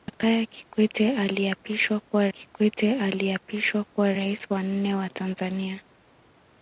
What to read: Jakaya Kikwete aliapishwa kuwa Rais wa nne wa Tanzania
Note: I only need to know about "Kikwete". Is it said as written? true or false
true